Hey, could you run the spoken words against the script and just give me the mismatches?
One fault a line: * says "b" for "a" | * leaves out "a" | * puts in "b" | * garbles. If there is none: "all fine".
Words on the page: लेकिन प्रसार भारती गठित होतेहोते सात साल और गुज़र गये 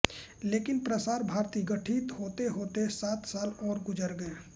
all fine